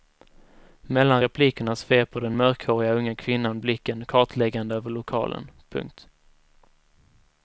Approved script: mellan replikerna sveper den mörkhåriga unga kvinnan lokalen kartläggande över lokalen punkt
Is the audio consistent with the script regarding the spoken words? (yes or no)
no